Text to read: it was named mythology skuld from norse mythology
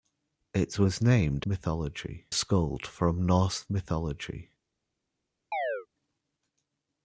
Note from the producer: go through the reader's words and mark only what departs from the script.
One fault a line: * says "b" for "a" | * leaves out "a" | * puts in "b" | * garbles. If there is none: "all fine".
all fine